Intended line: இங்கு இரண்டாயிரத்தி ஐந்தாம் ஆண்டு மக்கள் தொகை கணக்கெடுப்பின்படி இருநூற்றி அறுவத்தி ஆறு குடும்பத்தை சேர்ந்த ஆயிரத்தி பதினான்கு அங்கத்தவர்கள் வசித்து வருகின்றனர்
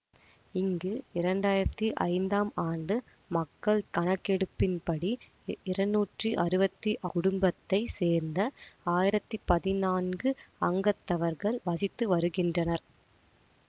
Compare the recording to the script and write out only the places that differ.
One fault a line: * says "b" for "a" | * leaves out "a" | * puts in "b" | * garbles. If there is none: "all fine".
* leaves out "தொகை"
* leaves out "ஆறு"